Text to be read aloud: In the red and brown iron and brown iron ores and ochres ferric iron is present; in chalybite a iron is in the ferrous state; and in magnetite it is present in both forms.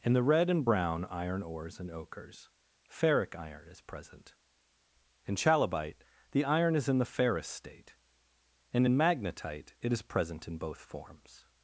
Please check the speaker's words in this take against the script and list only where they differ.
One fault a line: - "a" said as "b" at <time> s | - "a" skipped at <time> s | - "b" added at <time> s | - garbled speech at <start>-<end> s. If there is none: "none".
- "and brown iron" skipped at 1.4 s
- "a" said as "the" at 6.3 s